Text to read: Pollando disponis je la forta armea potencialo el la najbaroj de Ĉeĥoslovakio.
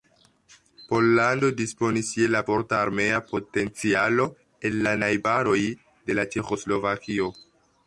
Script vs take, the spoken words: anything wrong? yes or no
no